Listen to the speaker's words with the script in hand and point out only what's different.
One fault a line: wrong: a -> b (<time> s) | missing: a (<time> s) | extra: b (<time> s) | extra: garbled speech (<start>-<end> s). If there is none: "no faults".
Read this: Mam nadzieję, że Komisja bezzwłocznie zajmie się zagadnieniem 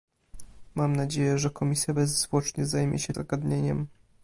no faults